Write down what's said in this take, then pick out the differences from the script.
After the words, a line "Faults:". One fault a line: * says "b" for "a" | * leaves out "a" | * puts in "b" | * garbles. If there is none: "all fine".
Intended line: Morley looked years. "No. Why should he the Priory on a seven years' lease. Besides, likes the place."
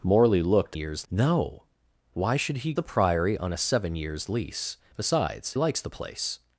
Morley looked years. "No. Why should he the Priory on a seven years' lease. Besides, likes the place."
Faults:
all fine